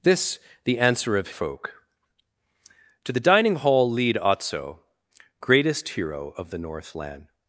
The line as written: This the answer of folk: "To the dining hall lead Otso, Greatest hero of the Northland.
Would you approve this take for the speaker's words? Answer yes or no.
yes